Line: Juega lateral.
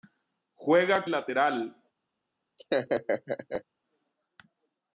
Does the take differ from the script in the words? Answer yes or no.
no